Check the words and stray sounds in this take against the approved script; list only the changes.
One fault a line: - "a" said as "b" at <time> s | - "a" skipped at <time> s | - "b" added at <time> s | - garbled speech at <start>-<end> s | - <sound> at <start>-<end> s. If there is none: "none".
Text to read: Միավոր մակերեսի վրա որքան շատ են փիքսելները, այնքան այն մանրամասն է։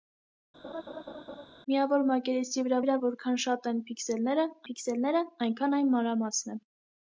- laugh at 0.6-1.5 s
- "վրա" added at 2.8 s
- "փիքսելները" added at 4.7 s